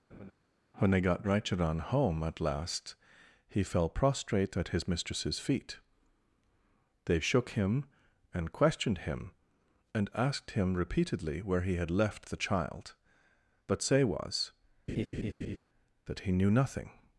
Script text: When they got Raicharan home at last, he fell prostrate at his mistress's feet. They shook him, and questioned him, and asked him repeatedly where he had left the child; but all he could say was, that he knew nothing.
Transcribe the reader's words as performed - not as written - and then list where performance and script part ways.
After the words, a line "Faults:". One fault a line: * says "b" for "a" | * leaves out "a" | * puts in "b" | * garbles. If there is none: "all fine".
When they got Raicharan home at last, he fell prostrate at his mistress's feet. They shook him, and questioned him, and asked him repeatedly where he had left the child; but say was, that he knew nothing.
Faults:
* leaves out "all he could"